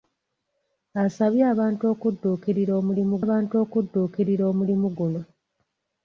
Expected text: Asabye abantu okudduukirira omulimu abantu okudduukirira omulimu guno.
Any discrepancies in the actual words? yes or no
no